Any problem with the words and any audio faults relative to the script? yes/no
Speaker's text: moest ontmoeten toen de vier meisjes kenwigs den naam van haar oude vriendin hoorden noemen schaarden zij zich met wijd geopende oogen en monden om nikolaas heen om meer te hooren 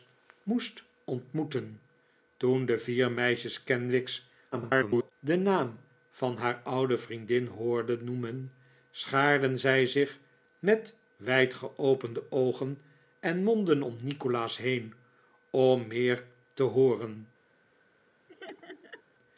yes